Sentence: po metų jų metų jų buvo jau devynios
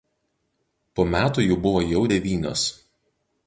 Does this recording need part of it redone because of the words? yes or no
yes